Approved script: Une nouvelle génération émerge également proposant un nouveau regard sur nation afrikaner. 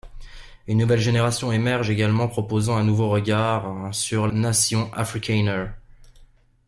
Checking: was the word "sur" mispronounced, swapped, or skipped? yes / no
no